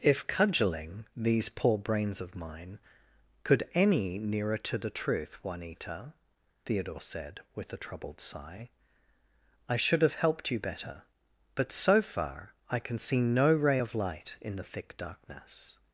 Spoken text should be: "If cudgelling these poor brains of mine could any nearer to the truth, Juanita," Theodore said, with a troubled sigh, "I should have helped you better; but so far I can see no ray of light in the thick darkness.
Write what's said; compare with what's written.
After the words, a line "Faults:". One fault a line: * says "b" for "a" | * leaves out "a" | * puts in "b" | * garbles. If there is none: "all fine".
"If cudgelling these poor brains of mine could any nearer to the truth, Juanita," Theodore said, with a troubled sigh, "I should have helped you better; but so far I can see no ray of light in the thick darkness.
Faults:
all fine